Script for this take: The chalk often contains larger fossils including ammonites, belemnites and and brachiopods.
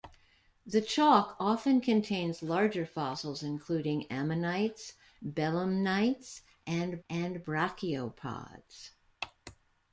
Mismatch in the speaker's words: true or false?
false